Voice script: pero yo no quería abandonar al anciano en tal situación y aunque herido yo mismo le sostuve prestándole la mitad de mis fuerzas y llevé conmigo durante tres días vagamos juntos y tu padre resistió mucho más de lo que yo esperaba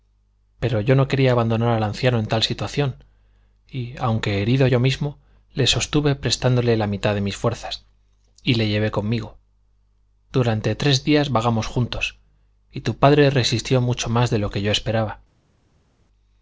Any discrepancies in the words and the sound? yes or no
yes